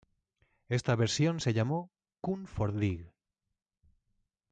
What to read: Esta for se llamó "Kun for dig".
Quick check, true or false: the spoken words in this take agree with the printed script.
false